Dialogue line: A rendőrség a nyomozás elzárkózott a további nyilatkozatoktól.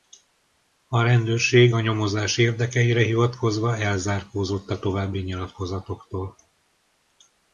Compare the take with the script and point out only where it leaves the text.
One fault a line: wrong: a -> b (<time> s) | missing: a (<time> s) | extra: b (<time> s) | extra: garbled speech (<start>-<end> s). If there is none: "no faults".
extra: érdekeire hivatkozva (2.4 s)